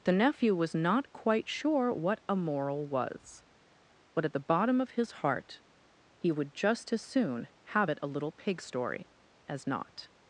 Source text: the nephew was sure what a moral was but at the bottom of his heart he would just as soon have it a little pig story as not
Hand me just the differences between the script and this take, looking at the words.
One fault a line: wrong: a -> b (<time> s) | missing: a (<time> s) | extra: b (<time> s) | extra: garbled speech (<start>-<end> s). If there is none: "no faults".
extra: not quite (0.7 s)